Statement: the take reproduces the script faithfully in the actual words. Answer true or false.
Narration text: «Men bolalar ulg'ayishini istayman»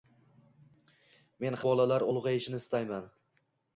true